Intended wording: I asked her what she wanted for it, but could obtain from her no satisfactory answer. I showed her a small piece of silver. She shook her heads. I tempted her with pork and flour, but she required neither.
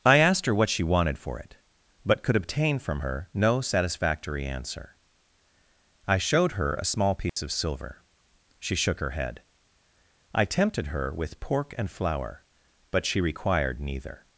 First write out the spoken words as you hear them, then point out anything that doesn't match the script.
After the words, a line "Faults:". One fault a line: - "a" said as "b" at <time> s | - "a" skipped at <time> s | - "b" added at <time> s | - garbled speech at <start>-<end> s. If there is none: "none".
I asked her what she wanted for it, but could obtain from her no satisfactory answer. I showed her a small piece of silver. She shook her head. I tempted her with pork and flour, but she required neither.
Faults:
- "heads" said as "head" at 9.1 s